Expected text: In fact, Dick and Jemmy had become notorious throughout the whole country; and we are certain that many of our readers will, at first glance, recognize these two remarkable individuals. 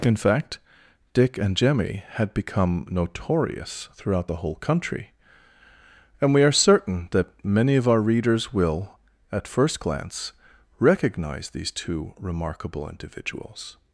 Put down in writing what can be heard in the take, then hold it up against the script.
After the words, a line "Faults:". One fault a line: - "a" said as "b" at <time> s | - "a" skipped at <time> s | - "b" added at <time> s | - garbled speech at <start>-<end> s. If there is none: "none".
In fact, Dick and Jemmy had become notorious throughout the whole country; and we are certain that many of our readers will, at first glance, recognize these two remarkable individuals.
Faults:
none